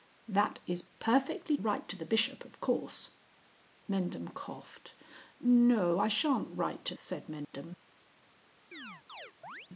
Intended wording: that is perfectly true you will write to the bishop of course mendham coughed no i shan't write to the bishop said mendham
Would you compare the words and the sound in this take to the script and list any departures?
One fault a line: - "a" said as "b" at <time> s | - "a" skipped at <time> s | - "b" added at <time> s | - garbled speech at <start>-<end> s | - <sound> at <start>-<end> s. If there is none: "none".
- "true you will" skipped at 1.6 s
- "the bishop" skipped at 6.9 s
- dropout at 7.4-7.5 s
- chirp at 8.7-9.7 s